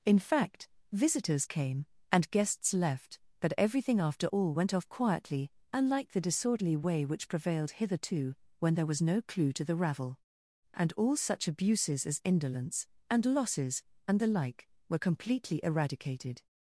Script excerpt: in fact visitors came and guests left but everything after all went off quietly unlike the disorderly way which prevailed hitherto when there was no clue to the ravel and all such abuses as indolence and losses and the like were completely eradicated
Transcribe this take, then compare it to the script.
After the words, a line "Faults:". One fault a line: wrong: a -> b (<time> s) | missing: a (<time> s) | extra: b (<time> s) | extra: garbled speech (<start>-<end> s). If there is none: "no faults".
in fact visitors came and guests left but everything after all went off quietly unlike the disorderly way which prevailed hitherto when there was no clue to the ravel and all such abuses as indolence and losses and the like were completely eradicated
Faults:
no faults